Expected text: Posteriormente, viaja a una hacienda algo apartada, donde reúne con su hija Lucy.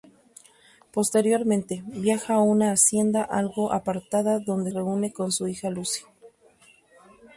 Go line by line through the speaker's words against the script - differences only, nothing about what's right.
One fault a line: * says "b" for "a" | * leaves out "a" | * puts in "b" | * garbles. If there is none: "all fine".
all fine